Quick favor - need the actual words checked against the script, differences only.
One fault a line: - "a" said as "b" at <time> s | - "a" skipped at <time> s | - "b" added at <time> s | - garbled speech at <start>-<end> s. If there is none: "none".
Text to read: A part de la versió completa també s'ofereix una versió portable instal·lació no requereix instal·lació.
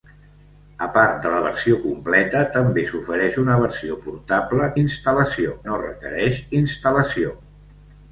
none